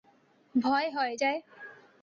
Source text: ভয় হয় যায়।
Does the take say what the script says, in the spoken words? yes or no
yes